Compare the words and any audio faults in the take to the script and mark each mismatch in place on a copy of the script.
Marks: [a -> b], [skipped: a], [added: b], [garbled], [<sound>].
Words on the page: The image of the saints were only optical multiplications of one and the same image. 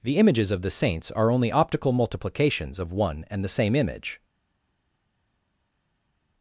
The [image -> images] of the saints [were -> are] only optical multiplications of one and the same image.